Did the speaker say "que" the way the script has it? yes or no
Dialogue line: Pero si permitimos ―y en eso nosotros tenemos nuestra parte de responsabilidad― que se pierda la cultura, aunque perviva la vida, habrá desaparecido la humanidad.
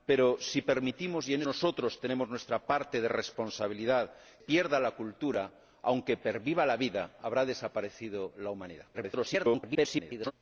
no